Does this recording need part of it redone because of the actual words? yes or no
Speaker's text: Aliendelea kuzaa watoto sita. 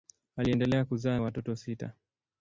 no